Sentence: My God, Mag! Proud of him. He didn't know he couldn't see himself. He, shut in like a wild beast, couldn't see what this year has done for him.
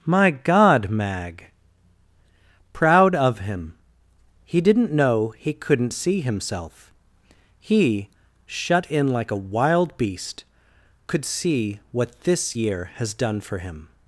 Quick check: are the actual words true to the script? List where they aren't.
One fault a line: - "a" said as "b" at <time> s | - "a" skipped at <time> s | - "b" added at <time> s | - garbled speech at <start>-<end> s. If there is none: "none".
- "couldn't" said as "could" at 11.1 s